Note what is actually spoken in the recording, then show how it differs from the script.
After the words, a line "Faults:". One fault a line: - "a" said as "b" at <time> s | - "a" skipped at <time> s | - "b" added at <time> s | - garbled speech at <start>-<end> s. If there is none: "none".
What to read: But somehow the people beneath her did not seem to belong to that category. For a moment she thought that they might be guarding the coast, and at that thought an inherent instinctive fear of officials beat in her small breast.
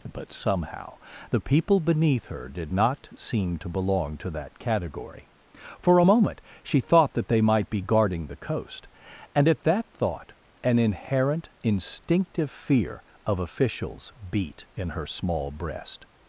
But somehow the people beneath her did not seem to belong to that category. For a moment she thought that they might be guarding the coast, and at that thought an inherent instinctive fear of officials beat in her small breast.
Faults:
none